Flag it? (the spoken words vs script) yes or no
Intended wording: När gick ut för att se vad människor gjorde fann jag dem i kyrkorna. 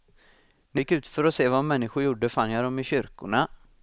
no